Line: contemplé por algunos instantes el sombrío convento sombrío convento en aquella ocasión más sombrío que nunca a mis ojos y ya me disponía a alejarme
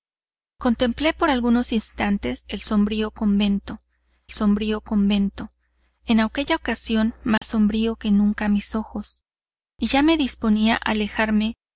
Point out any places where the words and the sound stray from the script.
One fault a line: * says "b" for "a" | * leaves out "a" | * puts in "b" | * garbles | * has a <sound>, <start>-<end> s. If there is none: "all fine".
* has a dropout, 7.4-7.4 s